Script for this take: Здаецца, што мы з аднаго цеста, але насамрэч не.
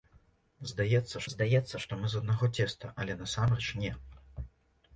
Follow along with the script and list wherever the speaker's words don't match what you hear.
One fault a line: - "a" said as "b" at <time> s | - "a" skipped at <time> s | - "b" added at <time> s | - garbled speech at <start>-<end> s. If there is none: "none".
- "здаецца" added at 1.3 s